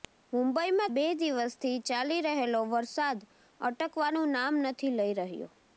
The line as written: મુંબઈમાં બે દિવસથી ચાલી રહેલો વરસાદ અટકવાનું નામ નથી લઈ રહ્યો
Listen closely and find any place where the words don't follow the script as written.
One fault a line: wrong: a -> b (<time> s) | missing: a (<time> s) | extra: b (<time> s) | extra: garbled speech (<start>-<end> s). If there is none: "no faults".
no faults